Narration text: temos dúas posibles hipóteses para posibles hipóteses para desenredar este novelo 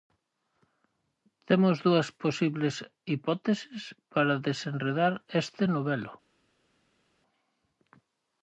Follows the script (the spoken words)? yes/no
no